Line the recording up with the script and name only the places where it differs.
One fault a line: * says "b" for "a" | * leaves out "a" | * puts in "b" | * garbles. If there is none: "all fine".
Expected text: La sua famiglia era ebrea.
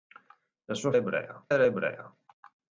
* says "ebrea" for "famiglia"